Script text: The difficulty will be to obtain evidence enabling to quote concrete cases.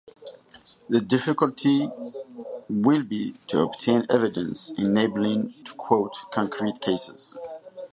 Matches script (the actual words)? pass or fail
pass